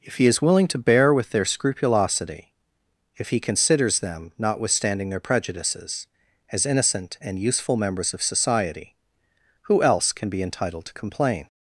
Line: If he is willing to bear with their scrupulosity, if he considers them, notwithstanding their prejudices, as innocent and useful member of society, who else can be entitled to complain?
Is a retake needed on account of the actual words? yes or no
yes